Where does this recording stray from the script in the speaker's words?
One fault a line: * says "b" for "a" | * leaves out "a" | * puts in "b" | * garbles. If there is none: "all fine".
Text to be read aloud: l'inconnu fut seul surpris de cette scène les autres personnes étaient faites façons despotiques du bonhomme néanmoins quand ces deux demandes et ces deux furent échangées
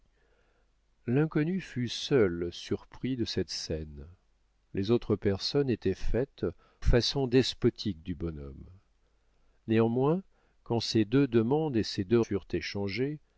all fine